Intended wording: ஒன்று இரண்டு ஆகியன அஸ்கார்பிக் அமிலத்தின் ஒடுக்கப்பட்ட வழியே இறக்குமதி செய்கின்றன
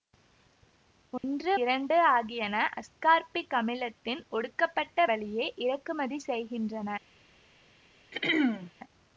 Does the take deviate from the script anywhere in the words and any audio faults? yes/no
yes